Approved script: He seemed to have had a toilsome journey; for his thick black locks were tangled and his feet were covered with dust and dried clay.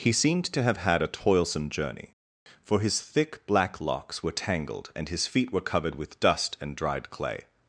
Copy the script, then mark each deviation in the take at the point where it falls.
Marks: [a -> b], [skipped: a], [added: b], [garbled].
He seemed to have had a toilsome journey; for his thick black locks were tangled and his feet were covered with dust and dried clay.